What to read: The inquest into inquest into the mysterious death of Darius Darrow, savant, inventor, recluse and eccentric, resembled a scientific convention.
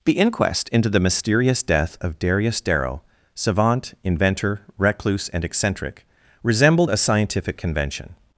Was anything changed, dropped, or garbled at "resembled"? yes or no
no